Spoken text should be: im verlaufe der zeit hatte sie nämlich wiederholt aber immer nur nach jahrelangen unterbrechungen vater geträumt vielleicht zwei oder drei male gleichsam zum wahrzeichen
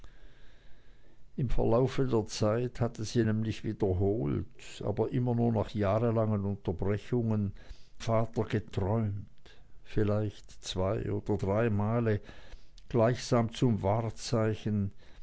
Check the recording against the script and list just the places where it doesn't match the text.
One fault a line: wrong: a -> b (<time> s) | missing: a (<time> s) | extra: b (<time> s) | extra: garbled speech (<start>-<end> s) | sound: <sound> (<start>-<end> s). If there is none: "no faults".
no faults